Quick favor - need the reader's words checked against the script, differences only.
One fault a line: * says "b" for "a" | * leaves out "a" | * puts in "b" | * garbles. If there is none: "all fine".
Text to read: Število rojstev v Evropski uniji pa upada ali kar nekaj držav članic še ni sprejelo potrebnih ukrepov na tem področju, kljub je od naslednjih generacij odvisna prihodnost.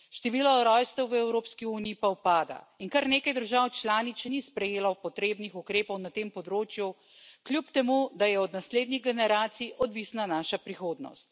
* says "in" for "ali"
* puts in "temu da"
* puts in "naša"